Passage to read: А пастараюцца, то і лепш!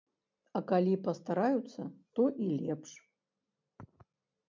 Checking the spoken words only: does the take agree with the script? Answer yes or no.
no